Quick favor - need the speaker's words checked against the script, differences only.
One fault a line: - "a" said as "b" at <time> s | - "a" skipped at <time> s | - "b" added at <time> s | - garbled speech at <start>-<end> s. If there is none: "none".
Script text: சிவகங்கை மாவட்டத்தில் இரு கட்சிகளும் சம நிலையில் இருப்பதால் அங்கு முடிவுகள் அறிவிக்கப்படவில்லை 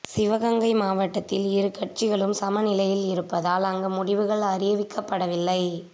none